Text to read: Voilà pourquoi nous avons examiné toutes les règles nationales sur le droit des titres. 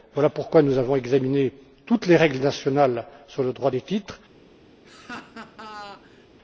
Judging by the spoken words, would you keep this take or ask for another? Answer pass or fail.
pass